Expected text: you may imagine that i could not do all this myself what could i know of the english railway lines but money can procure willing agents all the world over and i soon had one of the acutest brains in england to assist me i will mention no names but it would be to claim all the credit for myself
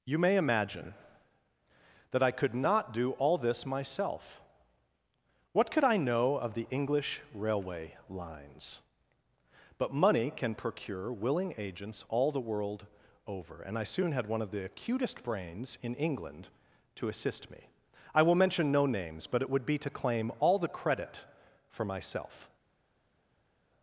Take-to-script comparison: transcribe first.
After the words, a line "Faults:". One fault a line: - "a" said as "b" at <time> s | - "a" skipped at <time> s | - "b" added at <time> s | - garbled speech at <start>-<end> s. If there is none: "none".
you may imagine that i could not do all this myself what could i know of the english railway lines but money can procure willing agents all the world over and i soon had one of the acutest brains in england to assist me i will mention no names but it would be to claim all the credit for myself
Faults:
none